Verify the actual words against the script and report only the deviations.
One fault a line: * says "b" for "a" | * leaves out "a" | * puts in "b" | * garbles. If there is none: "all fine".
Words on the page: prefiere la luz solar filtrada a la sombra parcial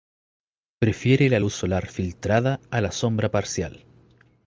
all fine